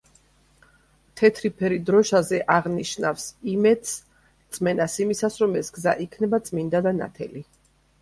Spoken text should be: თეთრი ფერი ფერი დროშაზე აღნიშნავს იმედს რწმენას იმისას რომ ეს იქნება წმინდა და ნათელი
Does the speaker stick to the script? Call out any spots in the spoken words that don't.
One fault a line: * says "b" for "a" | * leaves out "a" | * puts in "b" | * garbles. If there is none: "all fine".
* leaves out "ფერი"
* puts in "გზა"